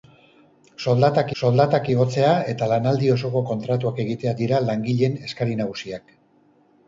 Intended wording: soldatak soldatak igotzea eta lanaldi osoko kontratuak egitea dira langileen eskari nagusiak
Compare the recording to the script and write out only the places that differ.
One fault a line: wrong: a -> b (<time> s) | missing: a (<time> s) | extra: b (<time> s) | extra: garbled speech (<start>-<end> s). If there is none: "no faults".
no faults